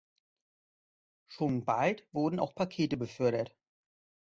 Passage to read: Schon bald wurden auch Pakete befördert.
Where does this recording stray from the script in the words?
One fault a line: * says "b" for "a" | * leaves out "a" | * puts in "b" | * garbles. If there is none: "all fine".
all fine